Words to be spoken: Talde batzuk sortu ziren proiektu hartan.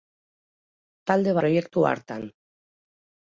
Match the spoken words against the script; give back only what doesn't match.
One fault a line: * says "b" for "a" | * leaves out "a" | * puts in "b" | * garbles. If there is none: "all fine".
* leaves out "batzuk sortu ziren"